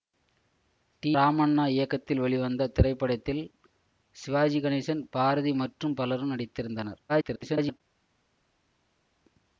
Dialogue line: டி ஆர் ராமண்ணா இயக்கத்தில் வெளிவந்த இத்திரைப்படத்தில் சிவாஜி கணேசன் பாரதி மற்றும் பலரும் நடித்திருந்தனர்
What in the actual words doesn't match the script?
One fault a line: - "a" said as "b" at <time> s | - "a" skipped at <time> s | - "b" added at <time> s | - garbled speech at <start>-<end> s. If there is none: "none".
- "ஆர்" skipped at 1.1 s
- garbled speech at 7.1-7.8 s